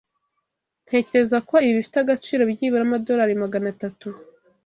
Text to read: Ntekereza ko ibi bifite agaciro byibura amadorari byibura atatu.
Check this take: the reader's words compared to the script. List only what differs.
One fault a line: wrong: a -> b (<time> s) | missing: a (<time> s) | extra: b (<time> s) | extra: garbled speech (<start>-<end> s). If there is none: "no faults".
wrong: byibura -> magana (3.4 s)